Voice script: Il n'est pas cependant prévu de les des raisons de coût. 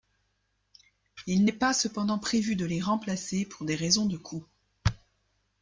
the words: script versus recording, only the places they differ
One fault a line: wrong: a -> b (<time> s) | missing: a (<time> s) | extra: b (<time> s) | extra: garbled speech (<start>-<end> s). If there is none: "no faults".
extra: remplacer pour (2.8 s)